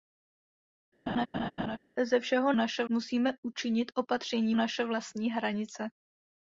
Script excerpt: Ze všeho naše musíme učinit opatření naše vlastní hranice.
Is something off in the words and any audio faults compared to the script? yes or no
yes